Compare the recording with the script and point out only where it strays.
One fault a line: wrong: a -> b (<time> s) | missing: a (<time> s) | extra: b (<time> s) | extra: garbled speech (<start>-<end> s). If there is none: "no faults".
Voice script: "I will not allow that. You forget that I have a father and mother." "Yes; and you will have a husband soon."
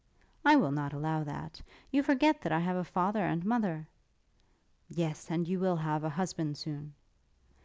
no faults